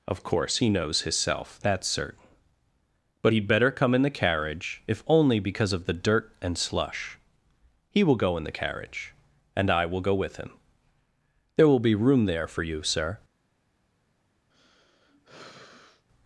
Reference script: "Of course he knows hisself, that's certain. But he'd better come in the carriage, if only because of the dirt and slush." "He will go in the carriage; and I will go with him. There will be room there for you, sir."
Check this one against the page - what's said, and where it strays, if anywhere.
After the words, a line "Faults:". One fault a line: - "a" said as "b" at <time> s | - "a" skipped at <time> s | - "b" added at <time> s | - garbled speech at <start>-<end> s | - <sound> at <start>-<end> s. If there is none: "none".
"Of course he knows hisself, that's certain. But he'd better come in the carriage, if only because of the dirt and slush." "He will go in the carriage; and I will go with him. There will be room there for you, sir."
Faults:
- sigh at 14.5-16.0 s